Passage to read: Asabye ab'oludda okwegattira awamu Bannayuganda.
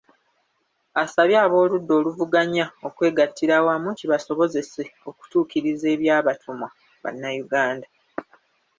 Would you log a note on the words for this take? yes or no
yes